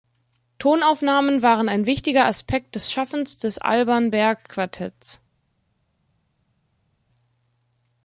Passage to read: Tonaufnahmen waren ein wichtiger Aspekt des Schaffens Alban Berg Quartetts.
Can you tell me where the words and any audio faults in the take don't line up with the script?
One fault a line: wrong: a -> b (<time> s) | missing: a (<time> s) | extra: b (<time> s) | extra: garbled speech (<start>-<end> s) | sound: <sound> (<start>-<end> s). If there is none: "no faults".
extra: des (3.4 s)